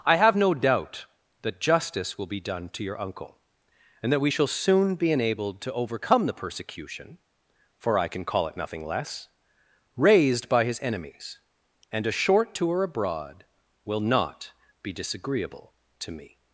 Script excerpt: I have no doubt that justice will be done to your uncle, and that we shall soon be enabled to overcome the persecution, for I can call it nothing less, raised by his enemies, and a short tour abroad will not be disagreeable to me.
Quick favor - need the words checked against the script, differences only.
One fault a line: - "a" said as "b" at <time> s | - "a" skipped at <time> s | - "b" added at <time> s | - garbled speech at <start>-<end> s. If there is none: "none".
none